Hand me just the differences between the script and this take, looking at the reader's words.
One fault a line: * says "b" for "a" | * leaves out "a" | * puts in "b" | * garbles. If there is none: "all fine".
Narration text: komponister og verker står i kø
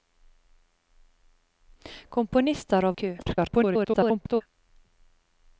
* leaves out "verker står"
* garbles